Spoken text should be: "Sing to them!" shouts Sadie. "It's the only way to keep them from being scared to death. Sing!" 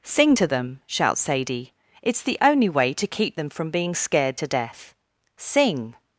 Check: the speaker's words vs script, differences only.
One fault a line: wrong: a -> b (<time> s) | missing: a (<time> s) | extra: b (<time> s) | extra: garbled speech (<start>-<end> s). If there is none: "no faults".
no faults